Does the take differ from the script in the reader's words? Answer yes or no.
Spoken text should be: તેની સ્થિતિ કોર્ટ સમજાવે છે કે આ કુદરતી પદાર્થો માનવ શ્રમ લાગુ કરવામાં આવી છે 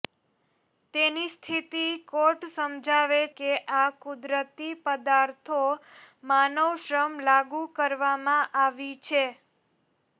yes